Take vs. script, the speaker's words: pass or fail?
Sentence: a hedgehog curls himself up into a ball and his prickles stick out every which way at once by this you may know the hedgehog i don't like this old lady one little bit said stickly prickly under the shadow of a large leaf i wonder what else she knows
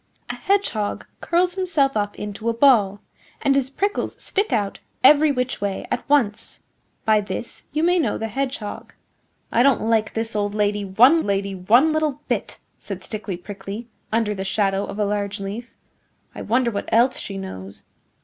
fail